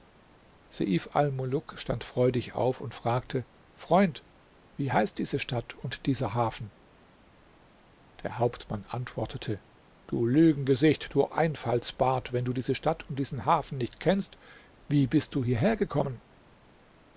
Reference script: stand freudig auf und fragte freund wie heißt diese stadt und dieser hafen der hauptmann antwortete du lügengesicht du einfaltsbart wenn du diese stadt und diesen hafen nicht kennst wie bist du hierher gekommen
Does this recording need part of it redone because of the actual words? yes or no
no